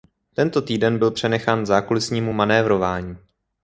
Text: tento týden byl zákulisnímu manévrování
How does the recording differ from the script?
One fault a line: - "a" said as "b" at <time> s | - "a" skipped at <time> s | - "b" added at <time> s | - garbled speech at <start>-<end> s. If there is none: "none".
- "přenechán" added at 1.1 s